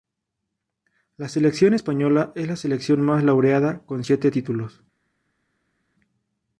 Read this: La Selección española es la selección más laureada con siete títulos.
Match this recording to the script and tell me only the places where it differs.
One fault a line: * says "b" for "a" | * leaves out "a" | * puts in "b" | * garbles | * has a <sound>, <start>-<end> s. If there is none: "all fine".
all fine